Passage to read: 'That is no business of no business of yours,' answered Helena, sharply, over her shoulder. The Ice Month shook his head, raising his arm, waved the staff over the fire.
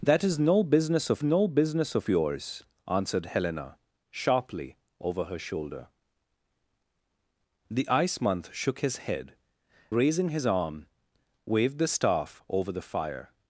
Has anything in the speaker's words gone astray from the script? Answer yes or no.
no